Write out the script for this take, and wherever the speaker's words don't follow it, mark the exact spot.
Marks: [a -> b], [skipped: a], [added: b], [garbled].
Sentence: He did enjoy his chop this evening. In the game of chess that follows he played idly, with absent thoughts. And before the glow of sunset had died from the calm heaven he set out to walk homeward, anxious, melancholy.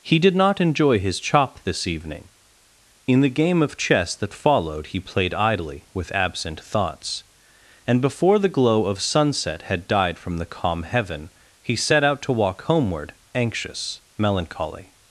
He did [added: not] enjoy his chop this evening. In the game of chess that [follows -> followed] he played idly, with absent thoughts. And before the glow of sunset had died from the calm heaven he set out to walk homeward, anxious, melancholy.